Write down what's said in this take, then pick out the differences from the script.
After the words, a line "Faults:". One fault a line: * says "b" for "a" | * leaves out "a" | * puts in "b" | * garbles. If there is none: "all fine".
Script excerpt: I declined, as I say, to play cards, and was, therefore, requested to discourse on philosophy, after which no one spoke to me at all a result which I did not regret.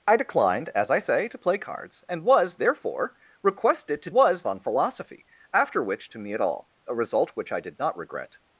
I declined, as I say, to play cards, and was, therefore, requested to was on philosophy, after which to me at all a result which I did not regret.
Faults:
* says "was" for "discourse"
* leaves out "no one spoke"